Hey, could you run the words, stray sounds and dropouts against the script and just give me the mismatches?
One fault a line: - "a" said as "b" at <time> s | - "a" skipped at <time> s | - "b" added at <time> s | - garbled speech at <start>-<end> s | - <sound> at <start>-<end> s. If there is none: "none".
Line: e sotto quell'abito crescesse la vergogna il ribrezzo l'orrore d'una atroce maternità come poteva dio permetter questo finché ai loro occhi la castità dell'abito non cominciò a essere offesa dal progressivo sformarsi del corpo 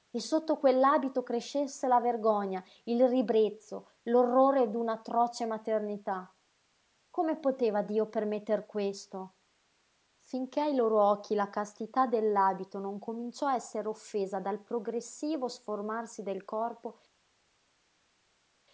none